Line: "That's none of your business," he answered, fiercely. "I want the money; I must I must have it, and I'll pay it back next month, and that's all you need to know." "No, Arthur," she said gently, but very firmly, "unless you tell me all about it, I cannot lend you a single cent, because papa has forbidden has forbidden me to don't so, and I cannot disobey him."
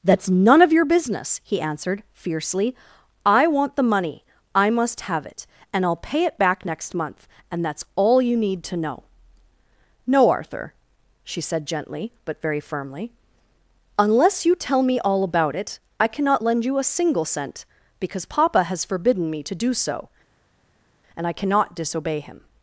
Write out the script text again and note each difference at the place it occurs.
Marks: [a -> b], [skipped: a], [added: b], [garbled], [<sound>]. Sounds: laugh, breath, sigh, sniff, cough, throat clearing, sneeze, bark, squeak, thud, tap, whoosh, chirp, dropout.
"That's none of your business," he answered, fiercely. "I want the money; I must [skipped: I must] have it, and I'll pay it back next month, and that's all you need to know." "No, Arthur," she said gently, but very firmly, "unless you tell me all about it, I cannot lend you a single cent, because papa has forbidden [skipped: has forbidden] me to [don't -> do] so, and I cannot disobey him."